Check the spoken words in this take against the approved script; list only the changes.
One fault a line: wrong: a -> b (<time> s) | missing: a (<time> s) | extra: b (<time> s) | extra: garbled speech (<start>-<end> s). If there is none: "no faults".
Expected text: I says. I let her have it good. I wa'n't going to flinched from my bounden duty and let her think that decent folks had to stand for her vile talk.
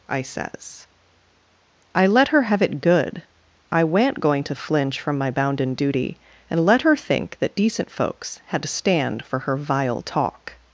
wrong: flinched -> flinch (4.5 s)